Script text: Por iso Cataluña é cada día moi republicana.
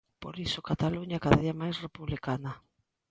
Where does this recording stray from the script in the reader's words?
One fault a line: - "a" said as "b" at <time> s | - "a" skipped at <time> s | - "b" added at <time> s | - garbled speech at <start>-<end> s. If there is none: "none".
- "moi" said as "máis" at 1.6 s